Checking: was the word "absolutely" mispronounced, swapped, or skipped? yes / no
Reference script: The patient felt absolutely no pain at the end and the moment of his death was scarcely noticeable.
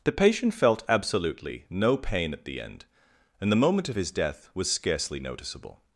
no